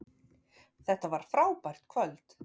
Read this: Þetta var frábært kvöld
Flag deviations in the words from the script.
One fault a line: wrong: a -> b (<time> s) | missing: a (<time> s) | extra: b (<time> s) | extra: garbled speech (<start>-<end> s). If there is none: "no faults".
no faults